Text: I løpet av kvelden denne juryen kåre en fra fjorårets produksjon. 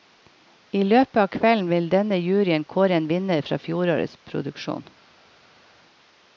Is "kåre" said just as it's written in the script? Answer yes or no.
yes